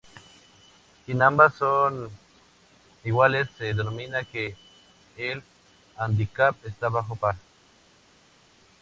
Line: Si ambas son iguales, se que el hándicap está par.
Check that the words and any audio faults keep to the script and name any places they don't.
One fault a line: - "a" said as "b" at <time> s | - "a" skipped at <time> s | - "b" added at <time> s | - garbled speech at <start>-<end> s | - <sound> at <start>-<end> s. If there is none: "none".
- "denomina" added at 3.7 s
- "bajo" added at 6.9 s